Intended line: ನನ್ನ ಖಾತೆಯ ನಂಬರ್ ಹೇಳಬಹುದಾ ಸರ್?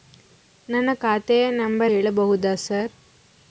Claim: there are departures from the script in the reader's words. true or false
false